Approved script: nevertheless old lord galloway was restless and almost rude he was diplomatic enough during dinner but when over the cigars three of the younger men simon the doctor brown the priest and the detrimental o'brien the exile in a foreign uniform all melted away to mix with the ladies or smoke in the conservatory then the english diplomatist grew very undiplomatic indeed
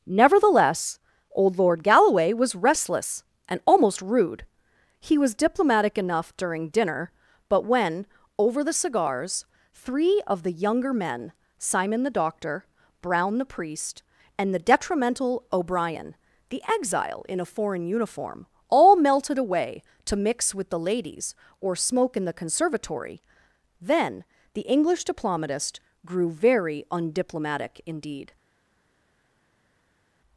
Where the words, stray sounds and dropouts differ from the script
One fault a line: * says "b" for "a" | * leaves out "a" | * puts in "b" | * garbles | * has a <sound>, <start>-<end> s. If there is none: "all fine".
all fine